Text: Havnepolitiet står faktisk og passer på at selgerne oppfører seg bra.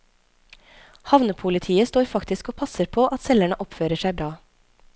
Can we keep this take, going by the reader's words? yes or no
yes